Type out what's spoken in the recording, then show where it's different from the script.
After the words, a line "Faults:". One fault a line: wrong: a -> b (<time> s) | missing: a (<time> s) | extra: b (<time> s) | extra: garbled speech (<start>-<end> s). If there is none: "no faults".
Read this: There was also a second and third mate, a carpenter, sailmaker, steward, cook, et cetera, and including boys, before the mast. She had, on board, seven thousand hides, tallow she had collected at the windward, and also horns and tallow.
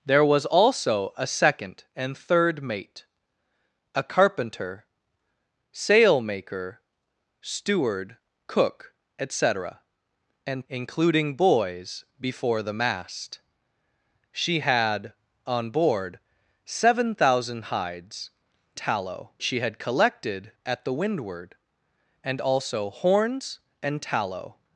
There was also a second and third mate, a carpenter, sailmaker, steward, cook, et cetera, and including boys, before the mast. She had, on board, seven thousand hides, tallow she had collected at the windward, and also horns and tallow.
Faults:
no faults